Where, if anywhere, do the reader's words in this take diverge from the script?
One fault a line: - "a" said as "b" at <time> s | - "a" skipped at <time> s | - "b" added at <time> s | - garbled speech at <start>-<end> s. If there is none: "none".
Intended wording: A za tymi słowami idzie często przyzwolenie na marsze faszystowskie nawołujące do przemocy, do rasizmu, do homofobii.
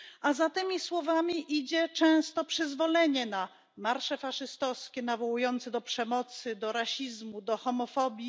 none